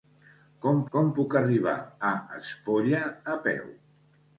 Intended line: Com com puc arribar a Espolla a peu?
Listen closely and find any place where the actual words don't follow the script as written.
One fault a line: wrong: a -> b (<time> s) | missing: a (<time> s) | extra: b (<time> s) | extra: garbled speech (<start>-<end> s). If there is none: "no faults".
no faults